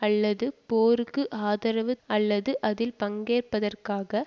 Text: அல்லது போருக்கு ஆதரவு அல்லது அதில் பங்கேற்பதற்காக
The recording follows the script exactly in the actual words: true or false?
true